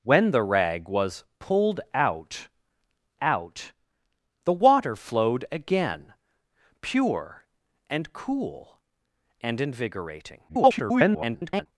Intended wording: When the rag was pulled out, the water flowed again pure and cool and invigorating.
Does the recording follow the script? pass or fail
fail